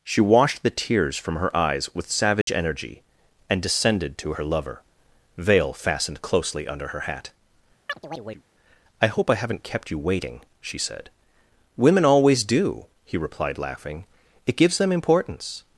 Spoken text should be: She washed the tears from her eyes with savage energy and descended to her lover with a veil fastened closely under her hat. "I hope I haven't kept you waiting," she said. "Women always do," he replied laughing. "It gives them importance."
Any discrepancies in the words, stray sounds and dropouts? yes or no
yes